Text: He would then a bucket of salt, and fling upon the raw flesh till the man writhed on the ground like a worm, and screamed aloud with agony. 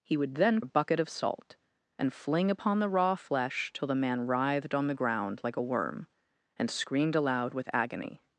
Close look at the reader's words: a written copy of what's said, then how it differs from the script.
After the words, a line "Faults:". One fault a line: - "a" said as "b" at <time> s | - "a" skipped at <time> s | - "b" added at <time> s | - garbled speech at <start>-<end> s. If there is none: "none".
He would then a bucket of salt, and fling upon the raw flesh till the man writhed on the ground like a worm, and screamed aloud with agony.
Faults:
none